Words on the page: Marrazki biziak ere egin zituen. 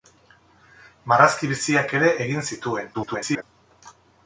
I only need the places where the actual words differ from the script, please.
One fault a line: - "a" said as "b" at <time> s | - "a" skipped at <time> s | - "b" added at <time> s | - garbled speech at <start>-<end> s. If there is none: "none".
- garbled speech at 2.9-3.4 s